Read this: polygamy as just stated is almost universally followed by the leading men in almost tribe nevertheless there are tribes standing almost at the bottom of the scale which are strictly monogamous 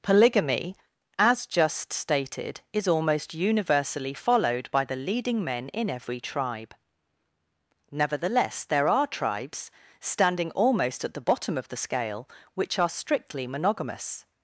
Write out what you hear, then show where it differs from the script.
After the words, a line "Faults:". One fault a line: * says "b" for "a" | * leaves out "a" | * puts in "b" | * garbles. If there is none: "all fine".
polygamy as just stated is almost universally followed by the leading men in every tribe nevertheless there are tribes standing almost at the bottom of the scale which are strictly monogamous
Faults:
* says "every" for "almost"